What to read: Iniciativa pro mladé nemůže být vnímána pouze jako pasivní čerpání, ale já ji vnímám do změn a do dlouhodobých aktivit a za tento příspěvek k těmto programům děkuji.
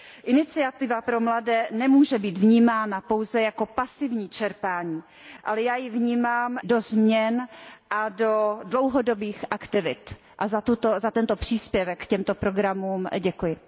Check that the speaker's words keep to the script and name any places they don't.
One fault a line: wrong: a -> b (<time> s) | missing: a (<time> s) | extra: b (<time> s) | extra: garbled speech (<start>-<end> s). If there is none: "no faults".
no faults